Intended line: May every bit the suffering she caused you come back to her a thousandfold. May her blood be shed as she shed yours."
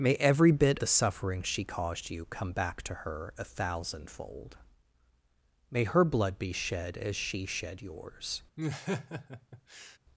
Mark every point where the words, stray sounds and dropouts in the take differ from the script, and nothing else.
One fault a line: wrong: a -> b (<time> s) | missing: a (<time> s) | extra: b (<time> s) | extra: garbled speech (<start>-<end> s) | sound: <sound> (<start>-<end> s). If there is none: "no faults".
sound: laugh (8.6-10.0 s)